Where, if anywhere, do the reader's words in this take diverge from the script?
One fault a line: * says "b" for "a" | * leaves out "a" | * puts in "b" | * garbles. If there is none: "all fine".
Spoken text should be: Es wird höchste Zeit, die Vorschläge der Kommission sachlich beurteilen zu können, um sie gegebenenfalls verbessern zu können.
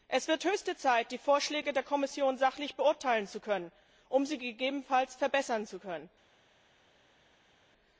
all fine